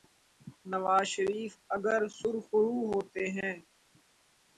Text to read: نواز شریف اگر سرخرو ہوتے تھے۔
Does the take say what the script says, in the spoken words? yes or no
no